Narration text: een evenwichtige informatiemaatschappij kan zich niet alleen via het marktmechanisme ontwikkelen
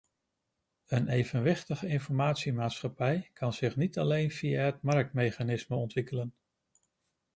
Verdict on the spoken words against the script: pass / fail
pass